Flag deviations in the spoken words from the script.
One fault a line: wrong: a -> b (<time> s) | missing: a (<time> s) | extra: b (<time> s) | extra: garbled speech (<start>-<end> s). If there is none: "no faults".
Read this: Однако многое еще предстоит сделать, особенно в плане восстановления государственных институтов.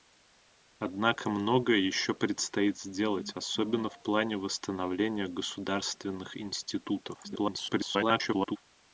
extra: garbled speech (7.2-8.6 s)